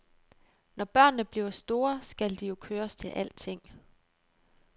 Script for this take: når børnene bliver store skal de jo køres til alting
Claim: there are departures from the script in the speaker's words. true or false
false